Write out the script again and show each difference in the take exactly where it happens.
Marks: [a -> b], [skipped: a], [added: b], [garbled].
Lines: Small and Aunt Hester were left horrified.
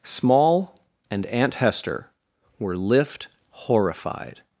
Small and Aunt Hester were [left -> lift] horrified.